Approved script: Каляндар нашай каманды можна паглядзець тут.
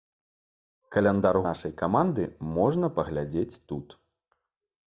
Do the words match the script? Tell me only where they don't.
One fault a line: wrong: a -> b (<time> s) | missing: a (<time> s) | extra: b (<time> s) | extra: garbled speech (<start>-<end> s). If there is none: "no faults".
no faults